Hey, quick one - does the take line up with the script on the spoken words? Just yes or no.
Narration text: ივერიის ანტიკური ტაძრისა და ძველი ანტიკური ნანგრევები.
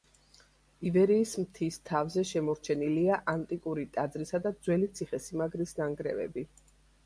no